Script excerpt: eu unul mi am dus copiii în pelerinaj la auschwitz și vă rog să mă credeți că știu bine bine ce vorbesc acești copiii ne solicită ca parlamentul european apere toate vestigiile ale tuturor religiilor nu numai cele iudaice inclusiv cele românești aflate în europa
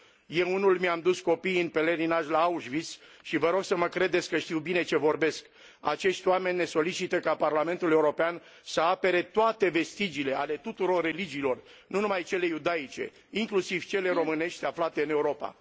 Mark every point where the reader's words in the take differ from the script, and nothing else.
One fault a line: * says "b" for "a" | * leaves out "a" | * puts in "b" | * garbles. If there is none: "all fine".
* leaves out "bine"
* says "oameni" for "copiii"
* puts in "să"